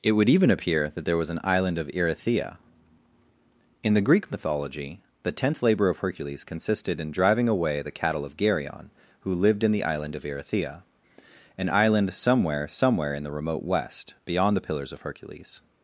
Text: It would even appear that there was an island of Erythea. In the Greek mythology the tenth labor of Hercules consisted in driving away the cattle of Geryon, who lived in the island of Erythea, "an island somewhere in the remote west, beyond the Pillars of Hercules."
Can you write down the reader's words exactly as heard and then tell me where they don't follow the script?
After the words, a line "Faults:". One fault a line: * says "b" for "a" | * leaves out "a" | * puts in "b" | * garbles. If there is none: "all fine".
It would even appear that there was an island of Erythea. In the Greek mythology the tenth labor of Hercules consisted in driving away the cattle of Geryon, who lived in the island of Erythea, "an island somewhere somewhere in the remote west, beyond the Pillars of Hercules."
Faults:
* puts in "somewhere"